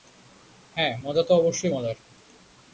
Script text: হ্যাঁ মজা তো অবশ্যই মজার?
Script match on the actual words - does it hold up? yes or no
yes